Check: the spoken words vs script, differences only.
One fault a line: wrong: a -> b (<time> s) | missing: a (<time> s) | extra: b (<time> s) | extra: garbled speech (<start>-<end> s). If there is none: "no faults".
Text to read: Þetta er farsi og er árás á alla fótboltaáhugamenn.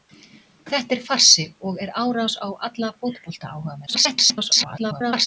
extra: garbled speech (3.9-5.3 s)